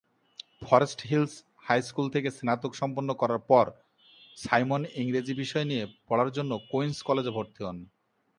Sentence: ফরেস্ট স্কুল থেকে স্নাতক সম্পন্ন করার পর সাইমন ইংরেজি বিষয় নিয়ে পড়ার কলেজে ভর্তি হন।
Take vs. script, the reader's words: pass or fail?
fail